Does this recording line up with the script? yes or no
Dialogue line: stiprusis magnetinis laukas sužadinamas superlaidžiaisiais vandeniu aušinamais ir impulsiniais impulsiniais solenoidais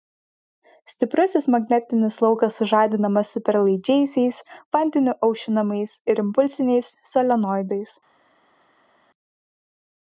no